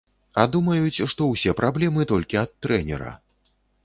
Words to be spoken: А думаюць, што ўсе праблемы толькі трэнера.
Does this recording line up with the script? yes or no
no